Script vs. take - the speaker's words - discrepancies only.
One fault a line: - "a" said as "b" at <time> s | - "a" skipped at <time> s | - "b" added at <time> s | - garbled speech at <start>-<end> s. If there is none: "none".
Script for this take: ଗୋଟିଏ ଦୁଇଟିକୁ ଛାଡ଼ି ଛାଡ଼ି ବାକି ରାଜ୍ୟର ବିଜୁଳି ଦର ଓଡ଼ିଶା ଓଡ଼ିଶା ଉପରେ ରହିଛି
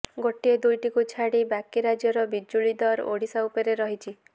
- "ଛାଡ଼ି" skipped at 1.4 s
- "ଓଡ଼ିଶା" skipped at 3.5 s